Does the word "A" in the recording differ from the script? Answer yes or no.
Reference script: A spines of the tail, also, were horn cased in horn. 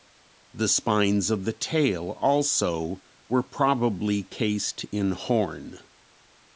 yes